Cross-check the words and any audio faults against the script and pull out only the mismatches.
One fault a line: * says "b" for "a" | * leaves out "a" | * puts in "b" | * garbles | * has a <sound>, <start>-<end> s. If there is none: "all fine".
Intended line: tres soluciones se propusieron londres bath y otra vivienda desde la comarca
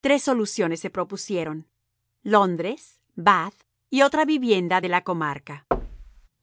* says "de" for "desde"
* has a thud, 5.7-6.3 s